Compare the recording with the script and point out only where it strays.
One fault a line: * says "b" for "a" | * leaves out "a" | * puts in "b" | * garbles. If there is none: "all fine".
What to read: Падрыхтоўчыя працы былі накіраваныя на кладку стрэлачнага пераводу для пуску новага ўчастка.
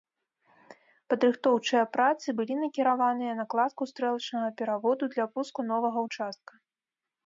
all fine